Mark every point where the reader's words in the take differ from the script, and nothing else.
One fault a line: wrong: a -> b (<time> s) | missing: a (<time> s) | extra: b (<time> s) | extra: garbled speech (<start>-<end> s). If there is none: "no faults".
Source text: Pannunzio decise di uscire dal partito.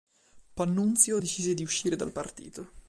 no faults